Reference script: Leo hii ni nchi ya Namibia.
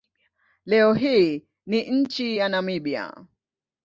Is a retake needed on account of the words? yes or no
no